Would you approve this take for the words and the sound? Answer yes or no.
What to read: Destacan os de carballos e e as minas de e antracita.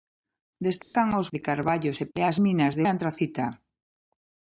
no